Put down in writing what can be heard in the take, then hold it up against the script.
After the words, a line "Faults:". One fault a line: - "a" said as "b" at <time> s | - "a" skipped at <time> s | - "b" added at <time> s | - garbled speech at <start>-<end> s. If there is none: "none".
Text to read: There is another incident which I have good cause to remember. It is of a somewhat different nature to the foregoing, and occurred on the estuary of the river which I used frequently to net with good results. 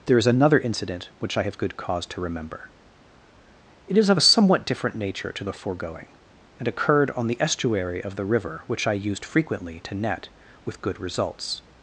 There is another incident which I have good cause to remember. It is of a somewhat different nature to the foregoing, and occurred on the estuary of the river which I used frequently to net with good results.
Faults:
none